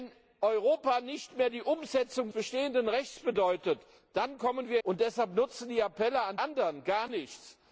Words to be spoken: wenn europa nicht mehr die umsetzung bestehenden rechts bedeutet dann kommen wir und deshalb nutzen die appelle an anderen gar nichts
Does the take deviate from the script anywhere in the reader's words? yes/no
no